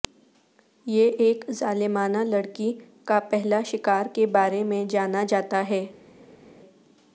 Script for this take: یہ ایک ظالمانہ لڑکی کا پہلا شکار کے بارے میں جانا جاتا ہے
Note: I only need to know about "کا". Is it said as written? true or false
true